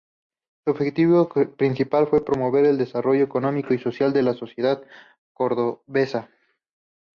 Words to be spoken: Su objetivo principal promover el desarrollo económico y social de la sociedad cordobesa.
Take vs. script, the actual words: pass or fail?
fail